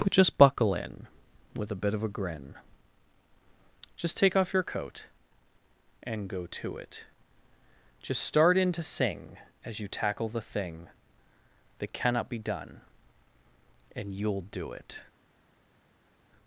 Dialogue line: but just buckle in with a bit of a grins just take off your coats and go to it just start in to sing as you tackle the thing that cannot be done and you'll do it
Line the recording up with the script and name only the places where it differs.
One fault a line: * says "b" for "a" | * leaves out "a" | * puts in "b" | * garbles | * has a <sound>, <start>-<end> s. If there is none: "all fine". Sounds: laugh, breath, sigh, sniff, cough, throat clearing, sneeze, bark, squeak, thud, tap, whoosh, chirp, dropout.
* says "grin" for "grins"
* says "coat" for "coats"